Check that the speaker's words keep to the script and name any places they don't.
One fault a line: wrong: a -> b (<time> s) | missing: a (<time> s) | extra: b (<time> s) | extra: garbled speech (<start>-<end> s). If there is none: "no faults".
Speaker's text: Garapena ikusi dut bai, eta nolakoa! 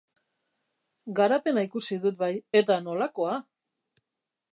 no faults